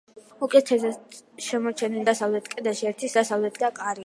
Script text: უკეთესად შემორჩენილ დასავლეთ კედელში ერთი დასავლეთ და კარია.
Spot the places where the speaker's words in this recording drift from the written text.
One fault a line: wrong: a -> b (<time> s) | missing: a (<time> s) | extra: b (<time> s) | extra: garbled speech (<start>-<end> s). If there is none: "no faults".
no faults